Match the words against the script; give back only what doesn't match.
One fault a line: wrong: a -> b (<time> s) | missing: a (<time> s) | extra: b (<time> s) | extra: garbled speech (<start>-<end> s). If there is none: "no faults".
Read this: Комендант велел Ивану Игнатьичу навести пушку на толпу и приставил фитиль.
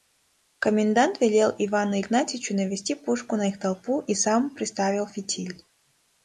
extra: их (3.5 s)
extra: сам (4.1 s)